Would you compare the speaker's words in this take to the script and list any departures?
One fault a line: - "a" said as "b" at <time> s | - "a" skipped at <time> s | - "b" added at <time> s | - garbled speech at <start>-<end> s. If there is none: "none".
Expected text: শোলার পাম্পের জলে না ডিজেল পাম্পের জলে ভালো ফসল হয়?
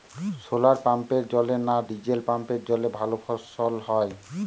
none